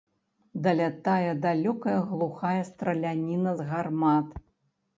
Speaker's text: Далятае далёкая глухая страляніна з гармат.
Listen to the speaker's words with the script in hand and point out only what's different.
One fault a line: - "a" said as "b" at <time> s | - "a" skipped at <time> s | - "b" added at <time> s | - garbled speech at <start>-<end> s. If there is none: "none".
none